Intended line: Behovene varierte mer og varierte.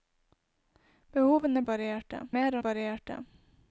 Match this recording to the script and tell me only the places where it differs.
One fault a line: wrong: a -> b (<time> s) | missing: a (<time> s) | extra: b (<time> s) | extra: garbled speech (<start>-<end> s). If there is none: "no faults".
no faults